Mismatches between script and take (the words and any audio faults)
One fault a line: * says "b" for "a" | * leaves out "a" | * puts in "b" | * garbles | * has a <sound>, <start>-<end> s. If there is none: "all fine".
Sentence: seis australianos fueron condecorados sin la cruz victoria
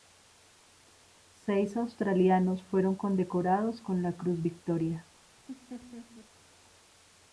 * says "con" for "sin"
* has a laugh, 5.5-6.3 s